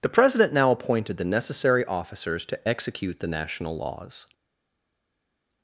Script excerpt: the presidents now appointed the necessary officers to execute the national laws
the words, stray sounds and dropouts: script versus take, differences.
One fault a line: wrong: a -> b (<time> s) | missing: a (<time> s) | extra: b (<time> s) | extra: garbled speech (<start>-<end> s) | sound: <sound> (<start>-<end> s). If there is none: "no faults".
wrong: presidents -> president (0.1 s)